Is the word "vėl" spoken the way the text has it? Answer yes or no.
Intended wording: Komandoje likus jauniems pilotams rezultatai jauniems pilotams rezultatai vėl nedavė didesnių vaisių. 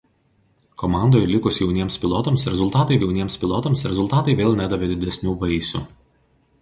yes